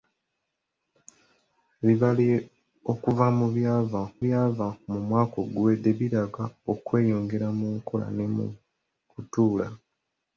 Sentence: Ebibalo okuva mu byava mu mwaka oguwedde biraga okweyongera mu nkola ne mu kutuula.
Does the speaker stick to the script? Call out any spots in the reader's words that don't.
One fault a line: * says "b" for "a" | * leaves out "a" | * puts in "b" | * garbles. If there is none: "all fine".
* puts in "byava"